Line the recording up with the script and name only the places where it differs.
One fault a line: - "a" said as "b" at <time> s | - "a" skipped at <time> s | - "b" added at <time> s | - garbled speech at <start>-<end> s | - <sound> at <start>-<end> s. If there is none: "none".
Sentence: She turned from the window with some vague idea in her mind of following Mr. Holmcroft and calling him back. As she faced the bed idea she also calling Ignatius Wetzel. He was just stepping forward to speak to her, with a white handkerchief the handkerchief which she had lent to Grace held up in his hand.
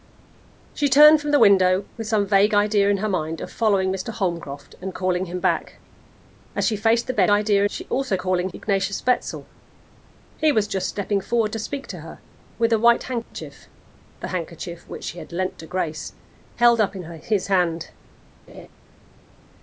- dropout at 13.2-13.3 s
- laugh at 18.5-18.7 s